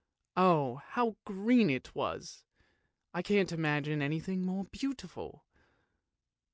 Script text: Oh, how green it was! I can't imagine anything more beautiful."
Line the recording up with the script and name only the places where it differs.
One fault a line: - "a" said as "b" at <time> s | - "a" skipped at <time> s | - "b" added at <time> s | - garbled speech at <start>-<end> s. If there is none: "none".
none